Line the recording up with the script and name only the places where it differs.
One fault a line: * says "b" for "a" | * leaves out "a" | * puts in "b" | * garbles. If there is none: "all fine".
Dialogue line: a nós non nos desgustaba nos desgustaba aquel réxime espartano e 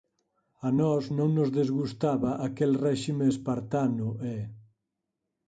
* leaves out "nos desgustaba"